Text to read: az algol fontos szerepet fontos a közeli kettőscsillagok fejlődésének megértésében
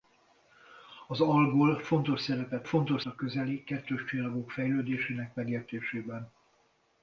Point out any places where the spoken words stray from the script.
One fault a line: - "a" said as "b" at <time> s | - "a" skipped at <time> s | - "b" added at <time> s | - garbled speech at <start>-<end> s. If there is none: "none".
none